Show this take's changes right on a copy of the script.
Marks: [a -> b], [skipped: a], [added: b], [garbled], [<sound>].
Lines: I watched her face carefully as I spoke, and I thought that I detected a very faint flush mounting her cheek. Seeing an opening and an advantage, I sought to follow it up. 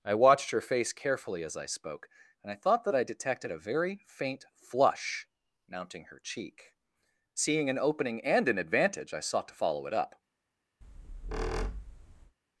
I watched her face carefully as I spoke, and I thought that I detected a very faint flush mounting her cheek. Seeing an opening and an advantage, I sought to follow it up. [squeak]